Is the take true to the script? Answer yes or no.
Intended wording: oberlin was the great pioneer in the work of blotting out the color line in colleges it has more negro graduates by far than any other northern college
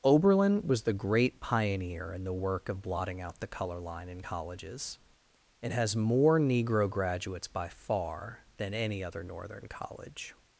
yes